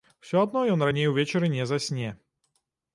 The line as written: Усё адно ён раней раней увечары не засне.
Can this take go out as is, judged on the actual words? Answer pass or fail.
fail